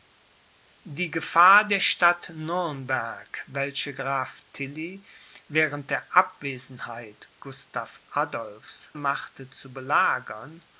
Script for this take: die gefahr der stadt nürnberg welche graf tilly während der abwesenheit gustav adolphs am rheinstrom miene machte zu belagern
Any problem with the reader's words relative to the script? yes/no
yes